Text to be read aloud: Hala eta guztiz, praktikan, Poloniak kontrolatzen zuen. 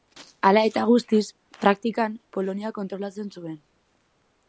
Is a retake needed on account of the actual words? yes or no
no